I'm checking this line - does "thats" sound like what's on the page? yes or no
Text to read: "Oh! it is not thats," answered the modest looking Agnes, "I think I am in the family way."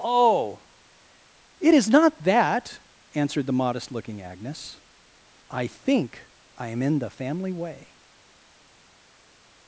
no